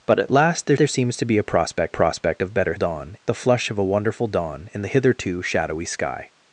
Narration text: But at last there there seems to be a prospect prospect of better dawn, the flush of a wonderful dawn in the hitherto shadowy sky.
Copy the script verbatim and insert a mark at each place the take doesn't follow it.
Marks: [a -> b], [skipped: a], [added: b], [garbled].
But at last there there seems to be a prospect prospect of better dawn, the flush of a wonderful dawn in the hitherto shadowy sky.